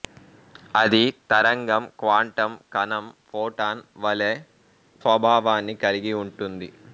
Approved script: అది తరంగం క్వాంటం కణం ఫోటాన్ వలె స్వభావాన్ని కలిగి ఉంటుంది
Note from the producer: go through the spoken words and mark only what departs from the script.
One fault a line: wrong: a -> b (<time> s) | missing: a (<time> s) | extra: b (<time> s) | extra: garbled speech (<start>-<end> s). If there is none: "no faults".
no faults